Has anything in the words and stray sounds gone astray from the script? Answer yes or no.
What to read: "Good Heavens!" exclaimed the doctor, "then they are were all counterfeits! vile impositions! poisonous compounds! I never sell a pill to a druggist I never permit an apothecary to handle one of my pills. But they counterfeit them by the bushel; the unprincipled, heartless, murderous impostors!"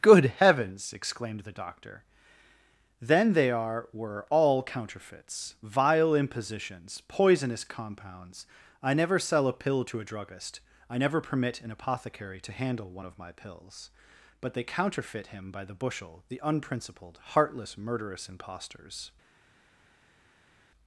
yes